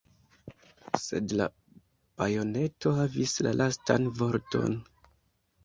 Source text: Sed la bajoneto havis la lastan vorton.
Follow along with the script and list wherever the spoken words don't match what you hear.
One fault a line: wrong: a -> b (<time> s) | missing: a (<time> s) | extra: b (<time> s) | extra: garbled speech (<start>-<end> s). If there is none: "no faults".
no faults